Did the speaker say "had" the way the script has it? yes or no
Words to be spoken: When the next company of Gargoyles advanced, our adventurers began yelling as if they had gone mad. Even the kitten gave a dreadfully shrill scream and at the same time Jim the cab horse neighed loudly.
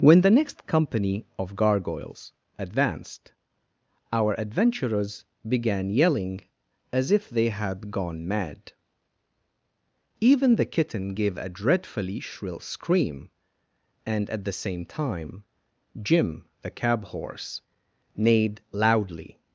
yes